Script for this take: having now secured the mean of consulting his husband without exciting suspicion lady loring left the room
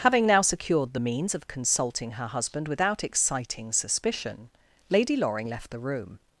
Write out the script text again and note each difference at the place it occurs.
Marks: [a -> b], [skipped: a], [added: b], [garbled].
having now secured the [mean -> means] of consulting [his -> her] husband without exciting suspicion lady loring left the room